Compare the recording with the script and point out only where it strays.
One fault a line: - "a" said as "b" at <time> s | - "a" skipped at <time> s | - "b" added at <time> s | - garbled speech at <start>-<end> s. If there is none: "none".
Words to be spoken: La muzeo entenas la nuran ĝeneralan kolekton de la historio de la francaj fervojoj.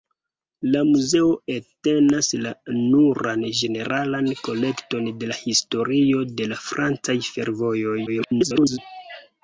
- garbled speech at 8.1-8.8 s